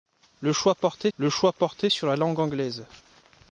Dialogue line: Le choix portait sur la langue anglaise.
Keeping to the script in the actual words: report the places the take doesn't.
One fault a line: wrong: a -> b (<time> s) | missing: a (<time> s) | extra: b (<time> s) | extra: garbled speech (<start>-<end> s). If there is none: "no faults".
extra: le choix portait (1.2 s)